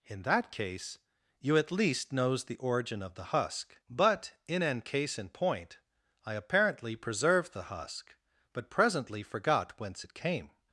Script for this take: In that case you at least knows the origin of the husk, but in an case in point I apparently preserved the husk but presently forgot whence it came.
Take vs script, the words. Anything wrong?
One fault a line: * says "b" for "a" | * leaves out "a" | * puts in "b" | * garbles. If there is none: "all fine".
all fine